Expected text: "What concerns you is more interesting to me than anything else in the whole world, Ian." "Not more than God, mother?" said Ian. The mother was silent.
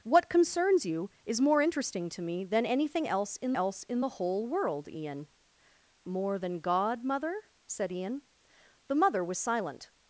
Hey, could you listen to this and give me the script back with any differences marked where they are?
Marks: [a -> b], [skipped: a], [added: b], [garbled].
"What concerns you is more interesting to me than anything else in [added: else in] the whole world, Ian." [skipped: "Not] more than God, mother?" said Ian. The mother was silent.